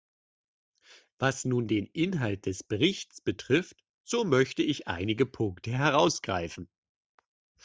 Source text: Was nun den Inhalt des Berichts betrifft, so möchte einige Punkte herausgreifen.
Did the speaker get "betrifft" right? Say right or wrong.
right